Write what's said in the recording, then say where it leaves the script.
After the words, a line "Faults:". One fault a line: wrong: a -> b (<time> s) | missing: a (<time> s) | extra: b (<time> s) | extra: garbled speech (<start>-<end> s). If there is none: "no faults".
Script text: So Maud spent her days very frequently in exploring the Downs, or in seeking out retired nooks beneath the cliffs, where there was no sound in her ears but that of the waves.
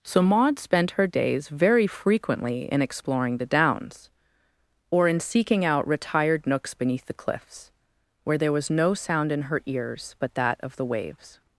So Maud spent her days very frequently in exploring the Downs, or in seeking out retired nooks beneath the cliffs, where there was no sound in her ears but that of the waves.
Faults:
no faults